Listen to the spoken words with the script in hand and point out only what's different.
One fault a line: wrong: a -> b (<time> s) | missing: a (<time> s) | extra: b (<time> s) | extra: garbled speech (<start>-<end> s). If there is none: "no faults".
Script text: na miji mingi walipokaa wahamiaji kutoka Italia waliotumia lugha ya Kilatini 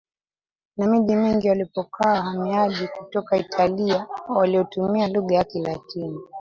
no faults